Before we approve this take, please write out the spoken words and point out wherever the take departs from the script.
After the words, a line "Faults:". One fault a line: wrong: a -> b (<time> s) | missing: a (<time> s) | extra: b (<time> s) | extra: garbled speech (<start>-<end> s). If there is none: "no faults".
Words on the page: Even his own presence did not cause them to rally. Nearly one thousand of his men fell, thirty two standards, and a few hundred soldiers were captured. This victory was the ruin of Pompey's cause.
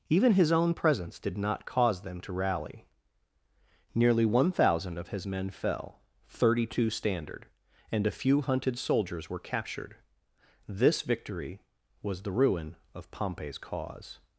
Even his own presence did not cause them to rally. Nearly one thousand of his men fell, thirty two standard, and a few hunted soldiers were captured. This victory was the ruin of Pompey's cause.
Faults:
wrong: standards -> standard (6.9 s)
wrong: hundred -> hunted (8.4 s)